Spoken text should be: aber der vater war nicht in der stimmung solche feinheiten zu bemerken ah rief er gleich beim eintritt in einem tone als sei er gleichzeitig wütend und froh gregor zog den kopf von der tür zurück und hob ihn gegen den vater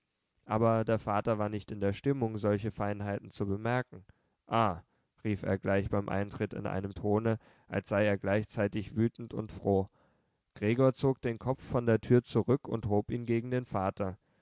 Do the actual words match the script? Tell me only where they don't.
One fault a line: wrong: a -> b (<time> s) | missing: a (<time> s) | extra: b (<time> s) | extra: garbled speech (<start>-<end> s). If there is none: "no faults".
no faults